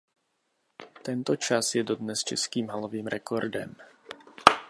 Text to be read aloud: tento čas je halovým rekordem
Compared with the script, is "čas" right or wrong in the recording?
right